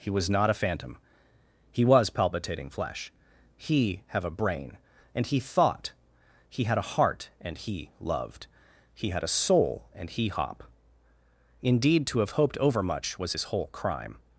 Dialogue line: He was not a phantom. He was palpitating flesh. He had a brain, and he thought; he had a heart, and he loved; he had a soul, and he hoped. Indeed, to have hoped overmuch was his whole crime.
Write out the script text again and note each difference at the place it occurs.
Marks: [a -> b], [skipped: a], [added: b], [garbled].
He was not a phantom. He was palpitating flesh. He [had -> have] a brain, and he thought; he had a heart, and he loved; he had a soul, and he [hoped. -> hop] Indeed, to have hoped overmuch was his whole crime.